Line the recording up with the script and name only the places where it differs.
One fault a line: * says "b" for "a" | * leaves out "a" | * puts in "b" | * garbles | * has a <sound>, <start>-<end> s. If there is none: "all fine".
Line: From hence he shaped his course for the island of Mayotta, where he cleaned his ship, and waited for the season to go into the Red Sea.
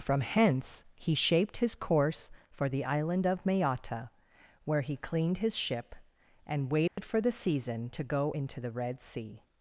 * has a dropout, 6.9-7.0 s